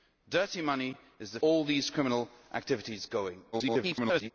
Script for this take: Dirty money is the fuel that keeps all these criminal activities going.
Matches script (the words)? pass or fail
fail